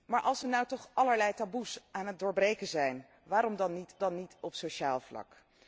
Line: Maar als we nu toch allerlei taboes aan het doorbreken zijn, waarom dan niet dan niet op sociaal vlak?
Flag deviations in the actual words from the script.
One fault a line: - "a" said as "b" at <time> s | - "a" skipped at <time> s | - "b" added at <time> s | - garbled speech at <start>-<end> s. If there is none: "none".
none